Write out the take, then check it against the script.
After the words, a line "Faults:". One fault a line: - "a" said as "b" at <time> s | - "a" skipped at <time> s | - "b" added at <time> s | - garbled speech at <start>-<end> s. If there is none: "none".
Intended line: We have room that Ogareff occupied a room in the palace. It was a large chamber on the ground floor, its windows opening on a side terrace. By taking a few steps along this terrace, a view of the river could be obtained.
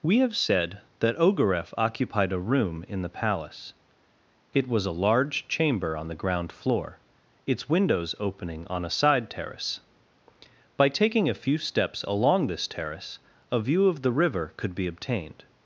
We have said that Ogareff occupied a room in the palace. It was a large chamber on the ground floor, its windows opening on a side terrace. By taking a few steps along this terrace, a view of the river could be obtained.
Faults:
- "room" said as "said" at 0.3 s